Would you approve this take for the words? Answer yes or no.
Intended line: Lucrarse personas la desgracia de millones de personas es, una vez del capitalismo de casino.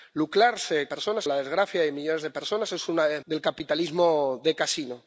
yes